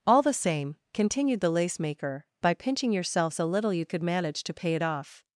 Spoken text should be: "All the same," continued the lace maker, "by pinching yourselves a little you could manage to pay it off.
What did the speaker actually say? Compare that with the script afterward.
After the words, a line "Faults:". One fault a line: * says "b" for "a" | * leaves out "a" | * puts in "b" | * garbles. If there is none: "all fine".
"All the same," continued the lace maker, "by pinching yourselves a little you could manage to pay it off.
Faults:
all fine